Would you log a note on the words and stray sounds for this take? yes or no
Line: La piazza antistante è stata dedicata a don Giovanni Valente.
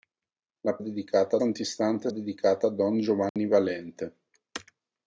yes